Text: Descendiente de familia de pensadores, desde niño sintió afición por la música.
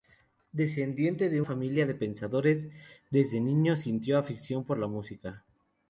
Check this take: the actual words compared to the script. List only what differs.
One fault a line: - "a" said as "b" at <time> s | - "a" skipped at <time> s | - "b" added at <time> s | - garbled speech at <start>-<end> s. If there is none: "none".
none